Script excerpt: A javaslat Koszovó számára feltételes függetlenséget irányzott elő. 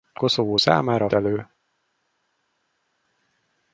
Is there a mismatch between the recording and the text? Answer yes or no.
yes